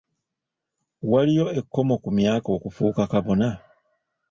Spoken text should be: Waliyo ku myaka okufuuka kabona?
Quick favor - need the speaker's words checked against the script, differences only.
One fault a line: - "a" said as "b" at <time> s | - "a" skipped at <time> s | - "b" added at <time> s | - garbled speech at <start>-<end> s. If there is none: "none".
- "ekkomo" added at 1.6 s